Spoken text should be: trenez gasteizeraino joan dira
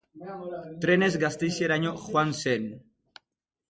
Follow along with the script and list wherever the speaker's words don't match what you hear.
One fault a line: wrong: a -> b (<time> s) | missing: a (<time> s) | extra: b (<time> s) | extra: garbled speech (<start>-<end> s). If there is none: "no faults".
wrong: dira -> zen (2.4 s)